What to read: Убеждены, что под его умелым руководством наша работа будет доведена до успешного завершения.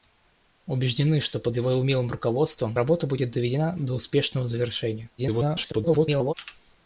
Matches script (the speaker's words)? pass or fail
fail